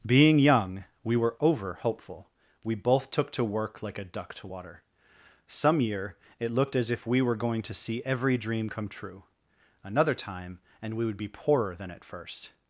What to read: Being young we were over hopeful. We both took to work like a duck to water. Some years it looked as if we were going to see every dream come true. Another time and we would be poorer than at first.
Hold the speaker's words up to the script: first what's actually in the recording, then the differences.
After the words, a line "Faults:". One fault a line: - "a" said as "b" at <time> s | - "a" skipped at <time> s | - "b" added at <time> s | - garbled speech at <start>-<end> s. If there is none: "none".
Being young we were over hopeful. We both took to work like a duck to water. Some year it looked as if we were going to see every dream come true. Another time and we would be poorer than at first.
Faults:
- "years" said as "year" at 5.8 s